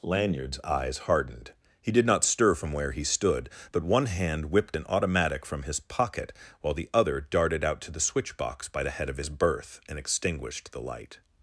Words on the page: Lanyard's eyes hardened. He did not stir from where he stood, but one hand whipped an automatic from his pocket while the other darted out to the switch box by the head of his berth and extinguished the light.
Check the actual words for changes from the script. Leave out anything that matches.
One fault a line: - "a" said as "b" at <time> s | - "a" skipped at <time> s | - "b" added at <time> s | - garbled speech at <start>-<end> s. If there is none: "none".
none